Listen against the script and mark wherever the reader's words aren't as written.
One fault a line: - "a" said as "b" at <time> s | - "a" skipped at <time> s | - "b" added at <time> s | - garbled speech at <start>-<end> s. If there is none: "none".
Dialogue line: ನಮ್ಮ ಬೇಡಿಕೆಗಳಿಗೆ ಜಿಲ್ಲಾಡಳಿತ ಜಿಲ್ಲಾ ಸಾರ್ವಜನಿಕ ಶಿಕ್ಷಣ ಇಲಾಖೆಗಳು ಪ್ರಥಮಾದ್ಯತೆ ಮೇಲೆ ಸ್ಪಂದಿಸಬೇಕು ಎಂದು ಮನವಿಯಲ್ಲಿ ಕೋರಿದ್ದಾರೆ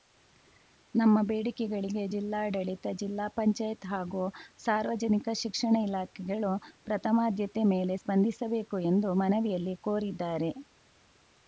- "ಪಂಚಾಯತ್ ಹಾಗೂ" added at 3.3 s